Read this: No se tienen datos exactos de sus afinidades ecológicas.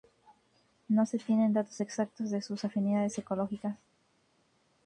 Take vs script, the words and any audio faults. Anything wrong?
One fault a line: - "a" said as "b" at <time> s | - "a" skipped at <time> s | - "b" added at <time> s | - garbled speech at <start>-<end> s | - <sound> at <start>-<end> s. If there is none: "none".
none